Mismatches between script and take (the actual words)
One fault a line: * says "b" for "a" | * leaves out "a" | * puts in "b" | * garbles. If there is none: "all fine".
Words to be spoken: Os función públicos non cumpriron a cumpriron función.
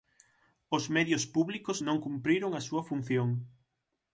* says "medios" for "función"
* says "súa" for "cumpriron"